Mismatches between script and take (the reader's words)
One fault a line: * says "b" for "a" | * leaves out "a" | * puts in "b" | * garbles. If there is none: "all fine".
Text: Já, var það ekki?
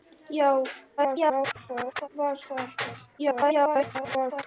* garbles
* garbles